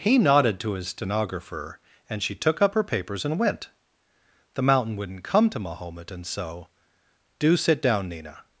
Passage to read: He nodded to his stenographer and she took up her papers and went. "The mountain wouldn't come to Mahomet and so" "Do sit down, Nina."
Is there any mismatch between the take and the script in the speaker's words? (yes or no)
no